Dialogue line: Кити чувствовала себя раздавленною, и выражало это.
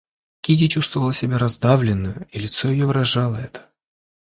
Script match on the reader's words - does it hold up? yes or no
no